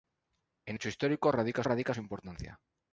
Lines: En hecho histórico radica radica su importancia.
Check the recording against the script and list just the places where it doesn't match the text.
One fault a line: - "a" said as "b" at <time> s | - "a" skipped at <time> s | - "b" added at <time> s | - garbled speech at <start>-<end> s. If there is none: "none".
none